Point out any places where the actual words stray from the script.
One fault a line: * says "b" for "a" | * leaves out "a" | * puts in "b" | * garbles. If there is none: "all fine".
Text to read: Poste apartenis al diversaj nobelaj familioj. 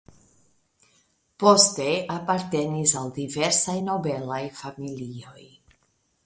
all fine